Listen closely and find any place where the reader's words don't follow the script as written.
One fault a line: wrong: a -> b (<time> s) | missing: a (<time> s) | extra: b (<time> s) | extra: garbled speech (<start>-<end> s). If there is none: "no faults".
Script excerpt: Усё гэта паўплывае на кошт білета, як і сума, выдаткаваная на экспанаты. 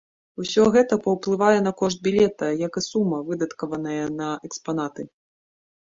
no faults